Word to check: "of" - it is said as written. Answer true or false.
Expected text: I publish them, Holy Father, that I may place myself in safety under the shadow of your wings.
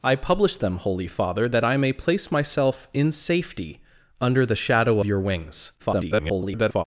false